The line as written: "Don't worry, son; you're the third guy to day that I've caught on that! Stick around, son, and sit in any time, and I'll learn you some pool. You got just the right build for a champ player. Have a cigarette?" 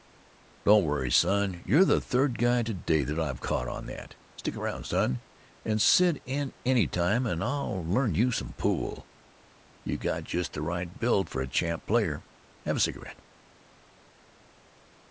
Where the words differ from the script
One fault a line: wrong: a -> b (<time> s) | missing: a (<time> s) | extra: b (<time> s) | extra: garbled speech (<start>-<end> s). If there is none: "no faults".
no faults